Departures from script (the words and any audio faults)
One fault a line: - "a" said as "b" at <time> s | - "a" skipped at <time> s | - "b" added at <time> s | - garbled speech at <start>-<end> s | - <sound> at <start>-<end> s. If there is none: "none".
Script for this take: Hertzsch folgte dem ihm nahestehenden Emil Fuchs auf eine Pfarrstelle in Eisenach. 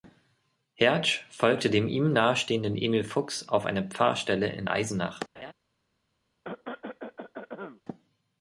- laugh at 5.4-5.5 s
- cough at 6.4-7.8 s